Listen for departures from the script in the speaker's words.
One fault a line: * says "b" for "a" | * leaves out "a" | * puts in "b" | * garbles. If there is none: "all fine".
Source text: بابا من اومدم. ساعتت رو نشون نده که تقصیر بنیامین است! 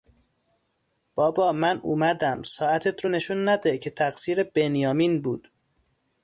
* says "بود" for "است"